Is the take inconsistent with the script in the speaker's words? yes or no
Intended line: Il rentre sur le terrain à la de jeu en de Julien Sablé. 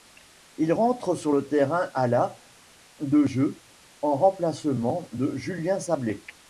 yes